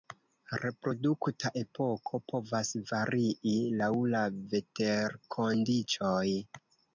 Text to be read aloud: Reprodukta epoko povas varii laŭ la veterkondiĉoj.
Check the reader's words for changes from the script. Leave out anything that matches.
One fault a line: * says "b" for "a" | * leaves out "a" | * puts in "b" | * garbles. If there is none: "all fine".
all fine